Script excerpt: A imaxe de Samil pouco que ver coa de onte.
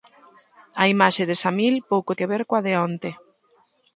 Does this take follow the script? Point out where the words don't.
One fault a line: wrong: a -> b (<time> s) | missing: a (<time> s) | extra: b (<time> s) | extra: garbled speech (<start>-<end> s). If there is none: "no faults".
no faults